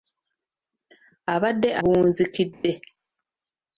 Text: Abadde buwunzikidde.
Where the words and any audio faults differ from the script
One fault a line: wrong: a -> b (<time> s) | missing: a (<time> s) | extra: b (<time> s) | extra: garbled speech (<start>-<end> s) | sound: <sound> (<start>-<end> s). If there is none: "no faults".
sound: dropout (2.5-2.6 s)